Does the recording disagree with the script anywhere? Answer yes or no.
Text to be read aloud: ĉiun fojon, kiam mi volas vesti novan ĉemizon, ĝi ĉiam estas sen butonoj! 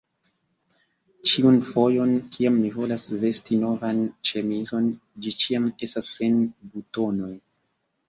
no